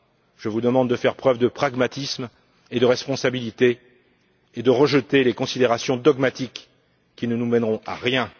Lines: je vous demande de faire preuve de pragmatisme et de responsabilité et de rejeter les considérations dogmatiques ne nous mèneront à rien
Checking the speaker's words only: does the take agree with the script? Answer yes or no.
no